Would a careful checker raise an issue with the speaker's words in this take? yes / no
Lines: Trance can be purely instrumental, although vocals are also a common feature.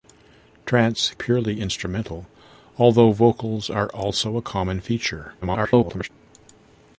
yes